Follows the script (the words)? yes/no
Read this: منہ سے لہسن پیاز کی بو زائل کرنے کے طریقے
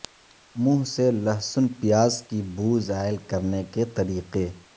yes